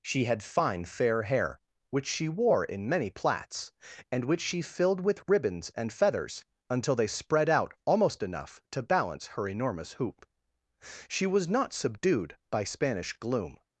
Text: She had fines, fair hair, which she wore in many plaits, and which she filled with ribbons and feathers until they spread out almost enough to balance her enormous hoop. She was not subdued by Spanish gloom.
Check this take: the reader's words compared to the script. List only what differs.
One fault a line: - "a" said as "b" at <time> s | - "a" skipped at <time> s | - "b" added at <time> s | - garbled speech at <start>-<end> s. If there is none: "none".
- "fines" said as "fine" at 0.4 s